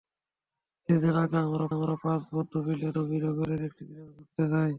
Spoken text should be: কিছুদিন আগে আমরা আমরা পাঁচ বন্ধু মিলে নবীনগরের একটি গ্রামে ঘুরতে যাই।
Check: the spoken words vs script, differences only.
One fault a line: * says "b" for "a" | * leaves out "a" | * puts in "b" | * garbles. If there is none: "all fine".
all fine